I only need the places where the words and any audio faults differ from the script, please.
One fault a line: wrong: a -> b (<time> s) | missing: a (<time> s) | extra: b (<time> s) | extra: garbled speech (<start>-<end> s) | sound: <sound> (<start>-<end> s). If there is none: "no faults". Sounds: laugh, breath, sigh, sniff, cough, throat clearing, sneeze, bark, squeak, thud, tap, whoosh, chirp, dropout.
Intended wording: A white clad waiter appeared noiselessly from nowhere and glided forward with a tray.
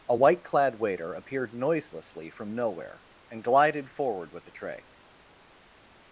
no faults